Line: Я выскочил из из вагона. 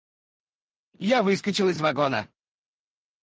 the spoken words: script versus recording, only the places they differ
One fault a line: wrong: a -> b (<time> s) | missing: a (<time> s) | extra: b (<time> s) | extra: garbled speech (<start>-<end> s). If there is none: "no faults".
no faults